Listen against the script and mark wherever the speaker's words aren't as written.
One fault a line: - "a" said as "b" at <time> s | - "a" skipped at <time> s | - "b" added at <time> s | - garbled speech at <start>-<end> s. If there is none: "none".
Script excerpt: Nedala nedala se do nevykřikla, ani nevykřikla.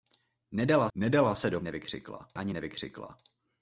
none